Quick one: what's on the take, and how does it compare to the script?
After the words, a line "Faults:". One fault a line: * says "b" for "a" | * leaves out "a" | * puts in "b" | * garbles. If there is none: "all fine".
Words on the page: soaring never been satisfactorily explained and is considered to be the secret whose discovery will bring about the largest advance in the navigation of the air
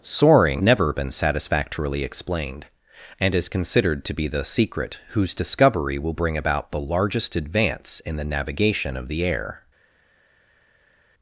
soaring never been satisfactorily explained and is considered to be the secret whose discovery will bring about the largest advance in the navigation of the air
Faults:
all fine